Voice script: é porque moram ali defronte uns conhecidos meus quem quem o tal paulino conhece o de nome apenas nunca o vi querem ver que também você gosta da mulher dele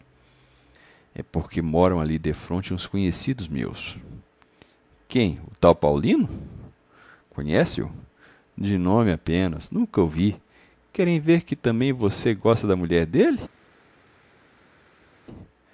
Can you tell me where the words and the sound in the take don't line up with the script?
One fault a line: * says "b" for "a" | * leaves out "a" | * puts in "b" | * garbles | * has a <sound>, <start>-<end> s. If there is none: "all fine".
* leaves out "quem"